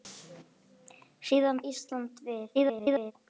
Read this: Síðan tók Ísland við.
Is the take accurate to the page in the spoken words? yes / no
no